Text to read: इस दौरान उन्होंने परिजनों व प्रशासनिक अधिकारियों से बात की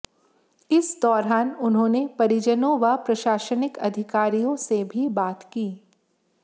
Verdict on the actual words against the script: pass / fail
fail